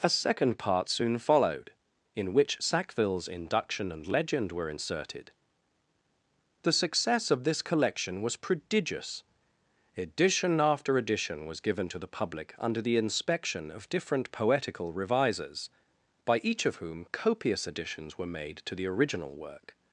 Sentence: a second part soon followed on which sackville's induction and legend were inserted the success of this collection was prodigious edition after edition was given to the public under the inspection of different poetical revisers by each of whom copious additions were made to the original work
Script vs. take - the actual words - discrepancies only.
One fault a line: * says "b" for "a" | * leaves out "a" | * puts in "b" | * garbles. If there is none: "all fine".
* says "in" for "on"